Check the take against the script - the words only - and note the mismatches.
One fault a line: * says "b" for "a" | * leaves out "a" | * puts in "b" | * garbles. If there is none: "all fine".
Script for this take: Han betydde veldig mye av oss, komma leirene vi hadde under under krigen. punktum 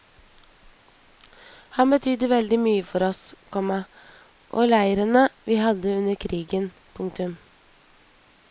* says "for" for "av"
* puts in "og"
* leaves out "under"